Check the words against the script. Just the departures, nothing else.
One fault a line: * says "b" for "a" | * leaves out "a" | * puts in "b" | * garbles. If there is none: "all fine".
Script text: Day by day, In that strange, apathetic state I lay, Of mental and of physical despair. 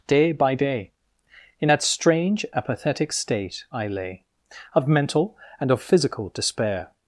all fine